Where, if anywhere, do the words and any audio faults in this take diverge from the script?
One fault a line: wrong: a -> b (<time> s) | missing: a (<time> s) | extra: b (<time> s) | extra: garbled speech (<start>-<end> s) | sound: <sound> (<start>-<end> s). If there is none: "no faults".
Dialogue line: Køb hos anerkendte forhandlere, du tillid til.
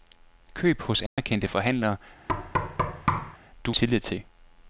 sound: dropout (1.1-1.2 s)
sound: thud (2.3-3.4 s)